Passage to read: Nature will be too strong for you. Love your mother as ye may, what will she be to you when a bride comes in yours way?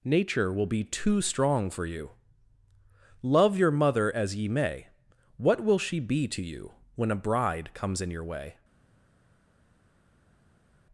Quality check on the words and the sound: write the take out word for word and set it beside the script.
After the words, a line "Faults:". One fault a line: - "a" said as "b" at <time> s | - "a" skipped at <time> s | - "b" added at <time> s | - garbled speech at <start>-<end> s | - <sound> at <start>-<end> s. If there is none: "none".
Nature will be too strong for you. Love your mother as ye may, what will she be to you when a bride comes in your way?
Faults:
- "yours" said as "your" at 8.1 s